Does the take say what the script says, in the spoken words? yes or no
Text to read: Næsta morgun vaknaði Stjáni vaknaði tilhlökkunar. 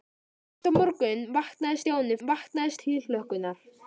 yes